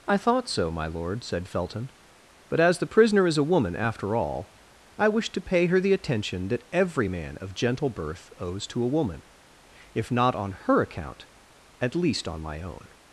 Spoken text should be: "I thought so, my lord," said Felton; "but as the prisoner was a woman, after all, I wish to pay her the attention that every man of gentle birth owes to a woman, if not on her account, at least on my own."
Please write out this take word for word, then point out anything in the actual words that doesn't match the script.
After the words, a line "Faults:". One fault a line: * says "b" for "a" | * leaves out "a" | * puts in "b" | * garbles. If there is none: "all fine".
"I thought so, my lord," said Felton; "but as the prisoner is a woman, after all, I wish to pay her the attention that every man of gentle birth owes to a woman, if not on her account, at least on my own."
Faults:
* says "is" for "was"